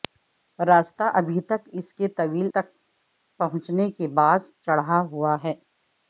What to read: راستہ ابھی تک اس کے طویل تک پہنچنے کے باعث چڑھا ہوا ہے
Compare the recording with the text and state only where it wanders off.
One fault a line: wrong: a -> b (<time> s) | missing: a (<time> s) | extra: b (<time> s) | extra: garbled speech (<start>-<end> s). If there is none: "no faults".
no faults